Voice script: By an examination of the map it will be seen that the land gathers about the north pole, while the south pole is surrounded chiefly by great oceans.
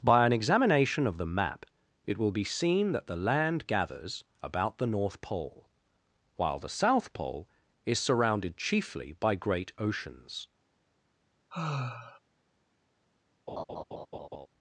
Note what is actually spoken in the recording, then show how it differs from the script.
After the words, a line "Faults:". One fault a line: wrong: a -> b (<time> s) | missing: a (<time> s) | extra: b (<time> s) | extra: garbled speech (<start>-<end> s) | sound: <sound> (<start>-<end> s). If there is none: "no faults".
By an examination of the map it will be seen that the land gathers about the north pole, while the south pole is surrounded chiefly by great oceans.
Faults:
sound: sigh (11.5-12.2 s)
sound: laugh (13.5-14.5 s)